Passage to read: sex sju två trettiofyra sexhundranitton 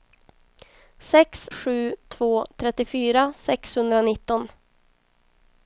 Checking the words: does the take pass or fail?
pass